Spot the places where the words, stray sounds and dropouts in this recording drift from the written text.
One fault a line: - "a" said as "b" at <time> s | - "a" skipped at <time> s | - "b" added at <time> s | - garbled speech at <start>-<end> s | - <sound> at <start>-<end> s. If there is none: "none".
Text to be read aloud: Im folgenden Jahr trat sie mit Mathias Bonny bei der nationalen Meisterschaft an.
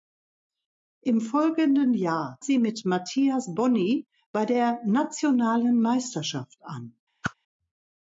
- "trat" skipped at 2.4 s
- whoosh at 7.2-7.3 s